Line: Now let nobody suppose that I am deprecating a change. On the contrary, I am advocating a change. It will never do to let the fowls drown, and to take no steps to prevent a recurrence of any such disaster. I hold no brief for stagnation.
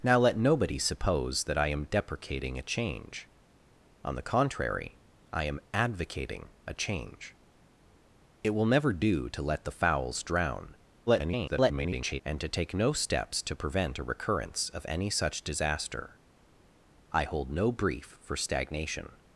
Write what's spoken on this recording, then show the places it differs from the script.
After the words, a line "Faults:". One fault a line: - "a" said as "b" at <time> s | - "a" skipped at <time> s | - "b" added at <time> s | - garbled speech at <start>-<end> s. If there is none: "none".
Now let nobody suppose that I am deprecating a change. On the contrary, I am advocating a change. It will never do to let the fowls drown, [garbled] and to take no steps to prevent a recurrence of any such disaster. I hold no brief for stagnation.
Faults:
- garbled speech at 11.1-12.2 s